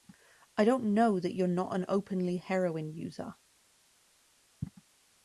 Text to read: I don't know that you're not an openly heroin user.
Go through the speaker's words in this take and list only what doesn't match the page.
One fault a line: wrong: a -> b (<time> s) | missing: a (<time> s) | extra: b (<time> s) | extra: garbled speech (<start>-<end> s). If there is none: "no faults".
no faults